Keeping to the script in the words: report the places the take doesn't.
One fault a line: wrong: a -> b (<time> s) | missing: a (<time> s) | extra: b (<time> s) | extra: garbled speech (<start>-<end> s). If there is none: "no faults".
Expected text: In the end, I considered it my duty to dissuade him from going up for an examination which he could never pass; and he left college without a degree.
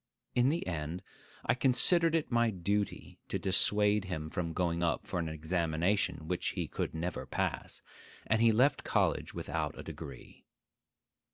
no faults